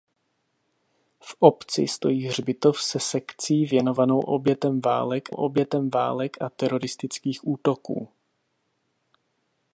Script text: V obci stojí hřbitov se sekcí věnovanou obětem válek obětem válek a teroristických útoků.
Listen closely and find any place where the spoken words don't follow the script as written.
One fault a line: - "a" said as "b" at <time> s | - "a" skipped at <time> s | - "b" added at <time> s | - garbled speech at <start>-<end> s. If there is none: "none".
none